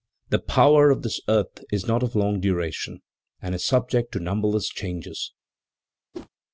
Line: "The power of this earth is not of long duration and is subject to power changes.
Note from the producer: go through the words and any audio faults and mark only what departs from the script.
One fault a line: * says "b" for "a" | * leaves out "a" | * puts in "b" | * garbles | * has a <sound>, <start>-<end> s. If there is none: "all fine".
* says "numberless" for "power"
* has a whoosh, 6.1-6.3 s